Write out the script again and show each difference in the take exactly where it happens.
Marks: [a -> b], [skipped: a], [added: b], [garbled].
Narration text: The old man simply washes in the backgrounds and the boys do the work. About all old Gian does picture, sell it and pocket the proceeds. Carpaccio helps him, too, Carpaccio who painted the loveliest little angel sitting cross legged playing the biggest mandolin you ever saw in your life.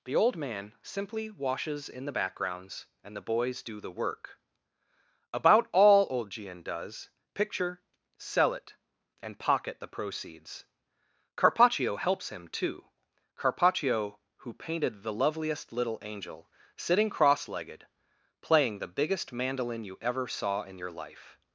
The old man simply washes in the backgrounds and the boys do the work. About all old Gian does picture, sell it and pocket the proceeds. Carpaccio helps him, too, Carpaccio who painted the loveliest little angel sitting cross legged playing the biggest mandolin you ever saw in your life.